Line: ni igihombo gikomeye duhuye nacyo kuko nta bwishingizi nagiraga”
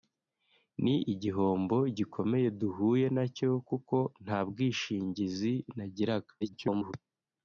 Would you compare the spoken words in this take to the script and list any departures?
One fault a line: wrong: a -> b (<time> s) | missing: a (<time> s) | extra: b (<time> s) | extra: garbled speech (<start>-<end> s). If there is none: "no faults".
extra: garbled speech (6.4-6.9 s)